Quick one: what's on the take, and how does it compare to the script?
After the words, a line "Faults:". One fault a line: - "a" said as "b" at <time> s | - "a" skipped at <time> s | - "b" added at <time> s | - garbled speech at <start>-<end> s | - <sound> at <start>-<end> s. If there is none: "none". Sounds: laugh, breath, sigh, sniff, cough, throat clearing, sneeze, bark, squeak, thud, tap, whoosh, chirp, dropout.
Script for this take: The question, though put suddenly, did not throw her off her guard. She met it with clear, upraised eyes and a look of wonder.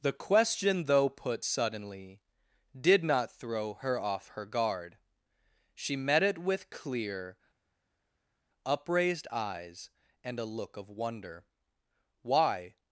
The question, though put suddenly, did not throw her off her guard. She met it with clear, upraised eyes and a look of wonder. "Why
Faults:
- "Why" added at 12.2 s